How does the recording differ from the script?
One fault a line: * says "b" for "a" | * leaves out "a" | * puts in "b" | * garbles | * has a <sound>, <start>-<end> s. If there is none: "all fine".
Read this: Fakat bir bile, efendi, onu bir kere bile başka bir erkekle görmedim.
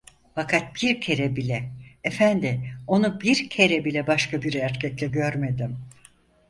* puts in "kere"